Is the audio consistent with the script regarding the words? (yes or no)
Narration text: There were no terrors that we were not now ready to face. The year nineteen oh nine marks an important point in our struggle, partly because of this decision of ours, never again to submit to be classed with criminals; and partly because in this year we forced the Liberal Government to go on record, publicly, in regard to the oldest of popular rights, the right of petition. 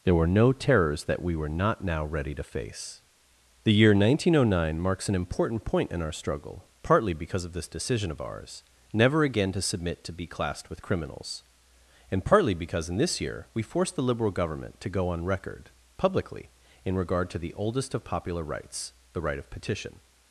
yes